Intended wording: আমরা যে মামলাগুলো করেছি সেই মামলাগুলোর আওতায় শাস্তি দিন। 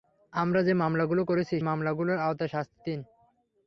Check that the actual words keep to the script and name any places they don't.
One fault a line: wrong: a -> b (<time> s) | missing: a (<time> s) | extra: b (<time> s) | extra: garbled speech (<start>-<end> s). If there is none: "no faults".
missing: সেই (1.6 s)